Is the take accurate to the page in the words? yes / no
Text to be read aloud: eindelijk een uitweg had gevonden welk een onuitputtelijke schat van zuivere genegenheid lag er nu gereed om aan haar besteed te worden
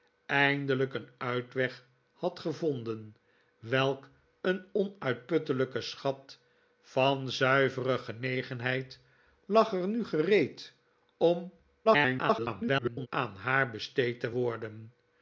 no